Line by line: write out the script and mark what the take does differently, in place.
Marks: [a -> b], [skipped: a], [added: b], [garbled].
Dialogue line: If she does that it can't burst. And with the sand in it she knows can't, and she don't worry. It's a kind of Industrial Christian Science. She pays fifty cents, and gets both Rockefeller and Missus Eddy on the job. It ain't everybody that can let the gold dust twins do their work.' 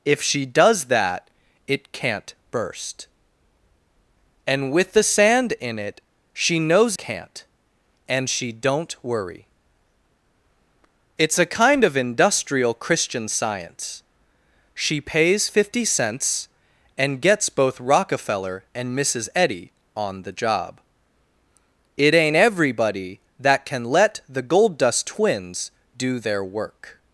If she does that it can't burst. And with the sand in it she knows can't, and she don't worry. It's a kind of Industrial Christian Science. She pays fifty cents, and gets both Rockefeller and Missus Eddy on the job. It ain't everybody that can let the gold dust twins do their work.'